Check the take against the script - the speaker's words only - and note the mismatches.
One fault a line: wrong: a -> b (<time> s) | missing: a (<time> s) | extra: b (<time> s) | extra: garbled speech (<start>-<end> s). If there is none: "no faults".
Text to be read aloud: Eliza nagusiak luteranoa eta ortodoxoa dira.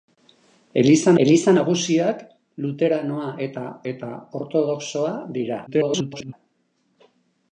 extra: eliza (1.2 s)
extra: eta (3.9 s)
extra: garbled speech (5.7-6.3 s)